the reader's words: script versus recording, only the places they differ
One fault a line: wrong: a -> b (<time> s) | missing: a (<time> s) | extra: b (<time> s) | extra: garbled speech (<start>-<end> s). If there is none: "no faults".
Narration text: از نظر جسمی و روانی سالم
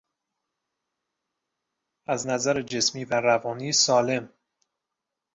no faults